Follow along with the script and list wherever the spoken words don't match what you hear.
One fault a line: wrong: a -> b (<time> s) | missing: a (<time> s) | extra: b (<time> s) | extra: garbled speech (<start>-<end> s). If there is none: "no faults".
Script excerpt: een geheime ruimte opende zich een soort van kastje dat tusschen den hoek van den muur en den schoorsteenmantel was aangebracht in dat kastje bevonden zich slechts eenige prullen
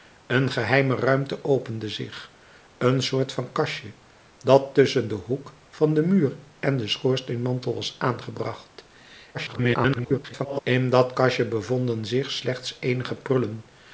extra: garbled speech (9.3-10.6 s)